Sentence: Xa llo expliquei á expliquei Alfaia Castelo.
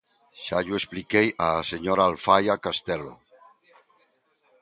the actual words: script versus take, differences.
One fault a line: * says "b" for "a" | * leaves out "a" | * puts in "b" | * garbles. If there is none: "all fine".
* says "señora" for "expliquei"